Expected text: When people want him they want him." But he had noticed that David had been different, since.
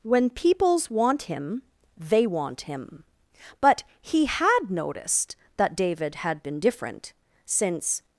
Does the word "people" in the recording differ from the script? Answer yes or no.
yes